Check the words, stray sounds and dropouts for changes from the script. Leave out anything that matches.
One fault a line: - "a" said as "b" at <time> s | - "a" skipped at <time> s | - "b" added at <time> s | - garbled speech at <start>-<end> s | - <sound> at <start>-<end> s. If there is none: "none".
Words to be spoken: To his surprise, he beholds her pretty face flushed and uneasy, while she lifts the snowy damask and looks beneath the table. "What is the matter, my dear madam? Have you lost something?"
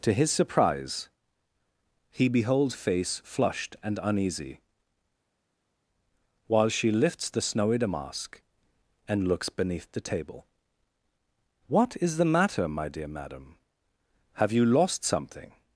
- "her pretty" skipped at 2.8 s